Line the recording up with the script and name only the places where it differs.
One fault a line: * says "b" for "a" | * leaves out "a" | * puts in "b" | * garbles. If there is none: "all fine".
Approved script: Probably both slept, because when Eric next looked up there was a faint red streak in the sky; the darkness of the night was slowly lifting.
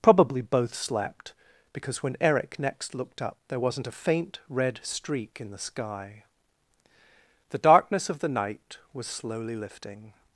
* says "wasn't" for "was"